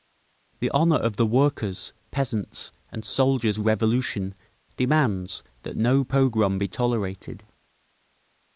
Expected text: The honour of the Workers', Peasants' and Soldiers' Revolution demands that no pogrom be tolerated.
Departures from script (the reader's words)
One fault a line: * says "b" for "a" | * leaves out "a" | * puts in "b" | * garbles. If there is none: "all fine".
all fine